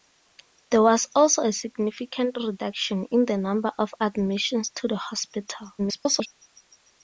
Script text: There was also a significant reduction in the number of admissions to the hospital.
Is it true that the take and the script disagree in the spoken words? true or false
true